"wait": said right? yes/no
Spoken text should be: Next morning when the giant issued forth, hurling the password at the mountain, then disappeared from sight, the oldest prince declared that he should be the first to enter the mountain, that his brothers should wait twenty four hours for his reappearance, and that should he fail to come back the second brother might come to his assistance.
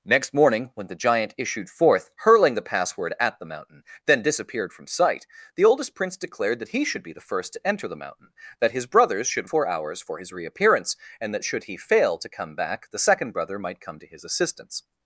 no